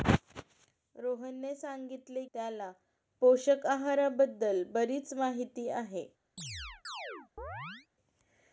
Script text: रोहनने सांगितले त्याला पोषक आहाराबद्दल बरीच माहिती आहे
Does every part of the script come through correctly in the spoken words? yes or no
yes